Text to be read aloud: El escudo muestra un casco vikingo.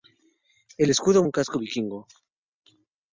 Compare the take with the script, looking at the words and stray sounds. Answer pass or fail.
fail